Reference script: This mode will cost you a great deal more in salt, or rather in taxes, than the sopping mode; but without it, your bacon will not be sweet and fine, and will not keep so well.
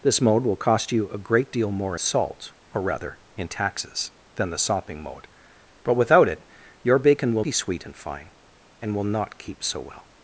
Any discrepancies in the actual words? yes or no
yes